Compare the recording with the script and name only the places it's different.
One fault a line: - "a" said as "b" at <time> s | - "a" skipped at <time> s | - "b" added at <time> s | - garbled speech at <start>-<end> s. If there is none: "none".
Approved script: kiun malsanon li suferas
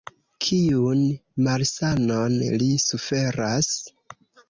none